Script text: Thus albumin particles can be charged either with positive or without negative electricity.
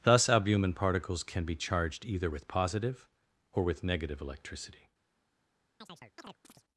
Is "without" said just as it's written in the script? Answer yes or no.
no